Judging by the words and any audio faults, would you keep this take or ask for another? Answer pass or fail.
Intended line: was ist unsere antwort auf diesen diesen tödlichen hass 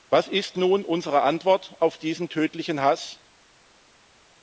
fail